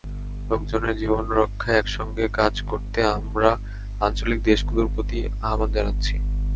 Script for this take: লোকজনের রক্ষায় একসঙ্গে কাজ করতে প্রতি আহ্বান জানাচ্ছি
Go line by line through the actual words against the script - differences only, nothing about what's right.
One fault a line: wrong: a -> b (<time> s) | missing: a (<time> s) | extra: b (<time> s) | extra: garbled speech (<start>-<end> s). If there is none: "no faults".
extra: জীবন (1.0 s)
extra: আমরা আঞ্চলিক দেশগুলোর (3.2 s)